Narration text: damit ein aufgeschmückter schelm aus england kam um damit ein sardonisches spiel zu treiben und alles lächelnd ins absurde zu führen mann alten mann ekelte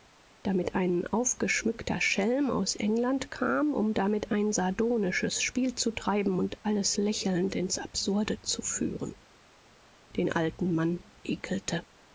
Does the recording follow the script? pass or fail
fail